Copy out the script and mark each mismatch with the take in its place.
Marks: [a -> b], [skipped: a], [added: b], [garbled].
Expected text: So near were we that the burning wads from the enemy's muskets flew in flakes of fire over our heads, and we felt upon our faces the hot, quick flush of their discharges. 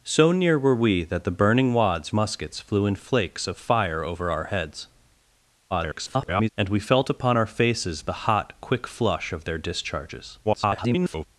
So near were we that the burning wads [skipped: from the enemy's] muskets flew in flakes of fire over our heads, [garbled] and we felt upon our faces the hot, quick flush of their discharges. [garbled]